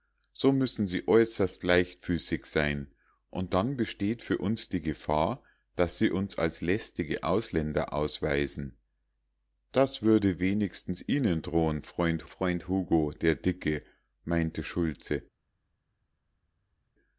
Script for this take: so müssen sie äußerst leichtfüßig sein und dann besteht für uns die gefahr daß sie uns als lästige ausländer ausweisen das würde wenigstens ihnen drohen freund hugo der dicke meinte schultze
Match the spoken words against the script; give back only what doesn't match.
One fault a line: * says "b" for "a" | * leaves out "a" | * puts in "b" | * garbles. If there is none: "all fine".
* puts in "freund"